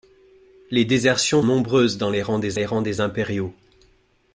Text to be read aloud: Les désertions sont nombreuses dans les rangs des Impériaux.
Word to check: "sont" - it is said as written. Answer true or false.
false